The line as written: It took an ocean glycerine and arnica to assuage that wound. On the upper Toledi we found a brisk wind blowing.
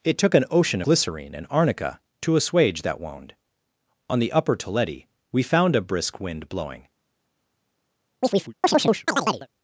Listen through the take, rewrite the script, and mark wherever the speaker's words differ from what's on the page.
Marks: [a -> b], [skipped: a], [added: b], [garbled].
It took an ocean glycerine and arnica to assuage that wound. On the upper Toledi we found a brisk wind blowing.